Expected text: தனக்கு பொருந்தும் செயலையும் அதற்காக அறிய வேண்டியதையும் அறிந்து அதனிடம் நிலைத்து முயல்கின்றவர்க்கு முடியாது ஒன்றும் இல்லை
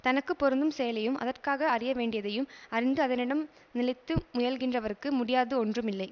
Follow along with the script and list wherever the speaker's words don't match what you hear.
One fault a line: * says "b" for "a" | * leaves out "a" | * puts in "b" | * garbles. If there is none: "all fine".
all fine